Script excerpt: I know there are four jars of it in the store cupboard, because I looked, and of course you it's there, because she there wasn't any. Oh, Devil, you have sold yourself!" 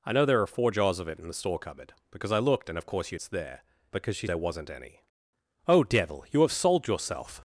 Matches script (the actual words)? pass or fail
pass